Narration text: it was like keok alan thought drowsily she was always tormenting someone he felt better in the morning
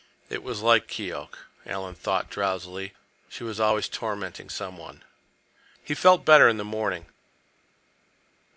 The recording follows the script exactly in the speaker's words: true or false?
true